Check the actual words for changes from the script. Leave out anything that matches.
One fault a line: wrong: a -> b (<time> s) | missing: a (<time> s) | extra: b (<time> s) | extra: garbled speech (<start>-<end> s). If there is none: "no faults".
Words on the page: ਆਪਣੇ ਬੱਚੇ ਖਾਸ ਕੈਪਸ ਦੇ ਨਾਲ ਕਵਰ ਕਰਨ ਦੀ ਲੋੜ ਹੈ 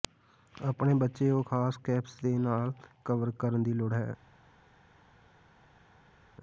extra: ਉਹ (1.3 s)